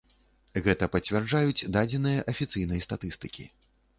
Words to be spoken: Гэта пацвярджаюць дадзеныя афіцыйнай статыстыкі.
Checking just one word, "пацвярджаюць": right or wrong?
right